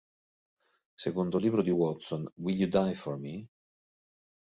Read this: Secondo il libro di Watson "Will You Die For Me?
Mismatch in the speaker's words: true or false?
false